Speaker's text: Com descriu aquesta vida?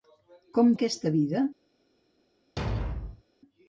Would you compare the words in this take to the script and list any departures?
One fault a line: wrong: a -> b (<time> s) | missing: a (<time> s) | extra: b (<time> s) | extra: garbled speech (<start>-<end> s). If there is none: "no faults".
missing: descriu (0.7 s)